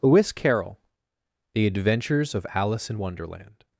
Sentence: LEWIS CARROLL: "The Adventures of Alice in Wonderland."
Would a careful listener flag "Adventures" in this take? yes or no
no